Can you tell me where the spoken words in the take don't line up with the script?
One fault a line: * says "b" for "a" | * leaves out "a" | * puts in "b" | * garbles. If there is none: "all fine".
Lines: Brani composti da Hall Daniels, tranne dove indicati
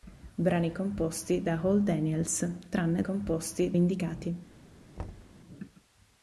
* says "composti" for "dove"